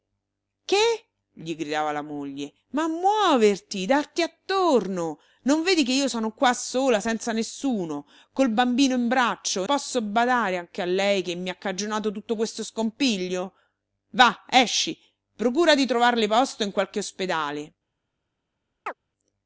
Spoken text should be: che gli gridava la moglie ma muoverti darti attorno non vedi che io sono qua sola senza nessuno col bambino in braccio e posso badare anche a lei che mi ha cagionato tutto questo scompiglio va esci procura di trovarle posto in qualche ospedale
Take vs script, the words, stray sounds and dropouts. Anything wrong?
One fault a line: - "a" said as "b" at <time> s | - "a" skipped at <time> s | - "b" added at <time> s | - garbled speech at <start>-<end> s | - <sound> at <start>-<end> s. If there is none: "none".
- chirp at 18.9-19.0 s